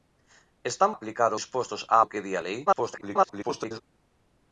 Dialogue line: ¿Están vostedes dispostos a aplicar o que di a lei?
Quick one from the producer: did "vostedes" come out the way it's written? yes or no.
no